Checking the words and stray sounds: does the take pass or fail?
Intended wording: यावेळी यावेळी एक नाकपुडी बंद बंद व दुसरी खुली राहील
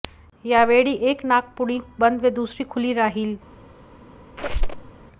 fail